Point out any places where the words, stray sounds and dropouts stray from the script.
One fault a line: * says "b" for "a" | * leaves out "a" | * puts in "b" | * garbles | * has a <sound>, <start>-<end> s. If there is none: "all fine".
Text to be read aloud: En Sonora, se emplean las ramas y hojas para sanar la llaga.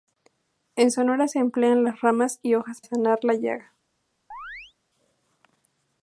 * leaves out "para"
* has a chirp, 4.3-4.7 s